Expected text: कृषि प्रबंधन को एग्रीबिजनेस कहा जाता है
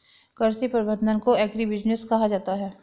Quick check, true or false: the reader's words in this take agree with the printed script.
true